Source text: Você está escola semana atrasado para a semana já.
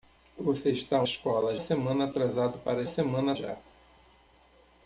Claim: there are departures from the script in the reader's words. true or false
false